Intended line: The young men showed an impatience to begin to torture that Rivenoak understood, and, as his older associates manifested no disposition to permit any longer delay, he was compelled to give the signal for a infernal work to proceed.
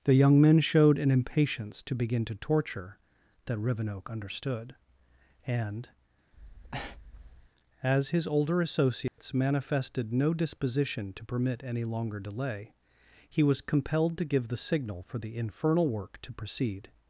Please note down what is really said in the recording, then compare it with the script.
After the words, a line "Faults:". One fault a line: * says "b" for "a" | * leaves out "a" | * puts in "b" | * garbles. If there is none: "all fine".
The young men showed an impatience to begin to torture that Rivenoak understood, and, as his older associates manifested no disposition to permit any longer delay, he was compelled to give the signal for the infernal work to proceed.
Faults:
* says "the" for "a"